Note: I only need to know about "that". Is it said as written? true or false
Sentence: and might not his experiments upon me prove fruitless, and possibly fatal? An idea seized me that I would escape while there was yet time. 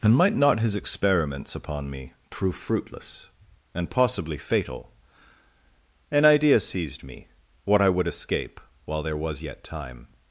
false